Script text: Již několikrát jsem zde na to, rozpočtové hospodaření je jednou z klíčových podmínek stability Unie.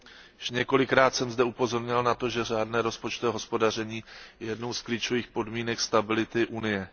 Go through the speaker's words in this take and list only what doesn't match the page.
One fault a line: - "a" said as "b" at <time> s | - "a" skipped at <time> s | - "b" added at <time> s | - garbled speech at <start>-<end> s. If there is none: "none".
- "upozorňoval" added at 1.4 s
- "že řádné" added at 2.3 s